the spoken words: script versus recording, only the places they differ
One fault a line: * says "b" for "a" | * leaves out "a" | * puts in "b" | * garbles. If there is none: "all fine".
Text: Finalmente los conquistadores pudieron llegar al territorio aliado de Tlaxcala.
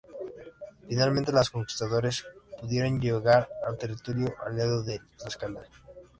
all fine